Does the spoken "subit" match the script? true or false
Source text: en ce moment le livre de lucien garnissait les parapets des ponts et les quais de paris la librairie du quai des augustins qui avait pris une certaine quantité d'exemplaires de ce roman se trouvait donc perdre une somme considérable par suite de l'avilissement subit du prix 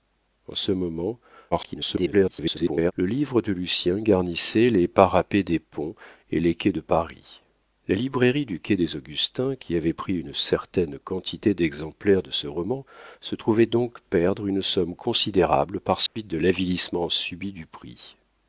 true